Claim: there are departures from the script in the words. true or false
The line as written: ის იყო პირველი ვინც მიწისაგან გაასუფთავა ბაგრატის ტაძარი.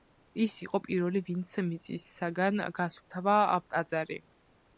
true